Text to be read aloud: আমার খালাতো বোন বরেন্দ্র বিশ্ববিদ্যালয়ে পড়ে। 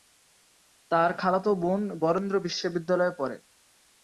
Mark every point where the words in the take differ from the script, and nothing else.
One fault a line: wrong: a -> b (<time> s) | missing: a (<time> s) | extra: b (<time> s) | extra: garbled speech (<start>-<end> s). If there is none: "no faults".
wrong: আমার -> তার (0.9 s)